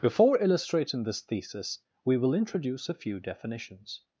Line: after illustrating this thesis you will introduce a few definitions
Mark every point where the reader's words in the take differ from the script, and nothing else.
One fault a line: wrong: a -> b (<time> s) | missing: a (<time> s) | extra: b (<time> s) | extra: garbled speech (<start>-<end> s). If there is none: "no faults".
wrong: after -> before (0.0 s)
wrong: you -> we (2.0 s)